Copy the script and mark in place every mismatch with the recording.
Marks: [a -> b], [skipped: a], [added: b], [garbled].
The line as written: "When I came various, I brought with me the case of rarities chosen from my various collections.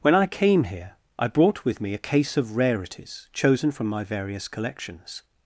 "When I came [various, -> here] I brought with me [the -> a] case of rarities chosen from my various collections.